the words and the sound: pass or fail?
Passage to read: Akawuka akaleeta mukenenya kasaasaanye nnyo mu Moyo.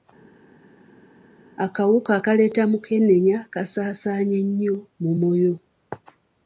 pass